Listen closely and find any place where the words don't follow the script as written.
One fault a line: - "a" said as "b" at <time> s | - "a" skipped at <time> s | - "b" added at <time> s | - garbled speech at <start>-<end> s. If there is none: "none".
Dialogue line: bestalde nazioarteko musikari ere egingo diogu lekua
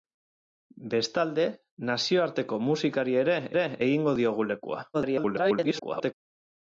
- "ere" added at 3.6 s
- garbled speech at 4.9-6.1 s